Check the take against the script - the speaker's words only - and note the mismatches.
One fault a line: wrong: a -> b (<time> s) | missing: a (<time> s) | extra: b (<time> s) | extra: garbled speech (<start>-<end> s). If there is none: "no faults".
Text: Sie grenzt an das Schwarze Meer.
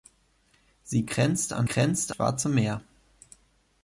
wrong: das -> grenzt (1.6 s)